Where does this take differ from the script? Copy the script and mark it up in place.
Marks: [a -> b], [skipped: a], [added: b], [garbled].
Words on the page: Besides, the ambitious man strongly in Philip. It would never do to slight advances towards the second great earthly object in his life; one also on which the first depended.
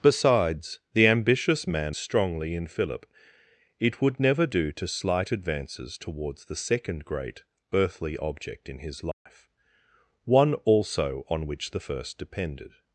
Besides, the ambitious man strongly in Philip. It would never do to slight advances towards the second great earthly object in his life; one also on which the first depended.